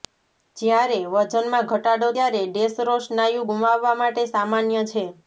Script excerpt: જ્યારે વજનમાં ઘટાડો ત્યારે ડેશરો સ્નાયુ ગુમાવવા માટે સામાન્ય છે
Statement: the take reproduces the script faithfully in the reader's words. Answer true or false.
true